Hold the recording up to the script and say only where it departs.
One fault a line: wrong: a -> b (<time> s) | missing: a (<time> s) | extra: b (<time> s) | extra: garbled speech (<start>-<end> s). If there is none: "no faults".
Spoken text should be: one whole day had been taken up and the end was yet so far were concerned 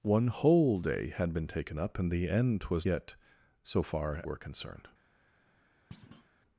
no faults